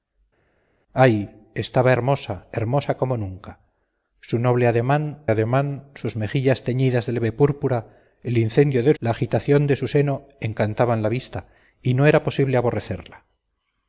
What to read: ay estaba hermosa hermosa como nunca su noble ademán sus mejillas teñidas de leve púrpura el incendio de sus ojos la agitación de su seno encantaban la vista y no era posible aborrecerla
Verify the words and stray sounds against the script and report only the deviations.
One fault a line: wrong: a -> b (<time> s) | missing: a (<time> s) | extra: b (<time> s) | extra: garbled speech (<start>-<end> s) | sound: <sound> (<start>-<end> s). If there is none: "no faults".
extra: ademán (5.3 s)
missing: sus ojos (8.9 s)